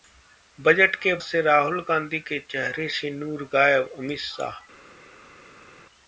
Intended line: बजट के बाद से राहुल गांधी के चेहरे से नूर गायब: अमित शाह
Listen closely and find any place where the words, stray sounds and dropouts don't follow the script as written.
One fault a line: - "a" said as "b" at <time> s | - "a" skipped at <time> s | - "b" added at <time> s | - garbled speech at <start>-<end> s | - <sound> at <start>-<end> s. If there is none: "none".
- "बाद" skipped at 1.1 s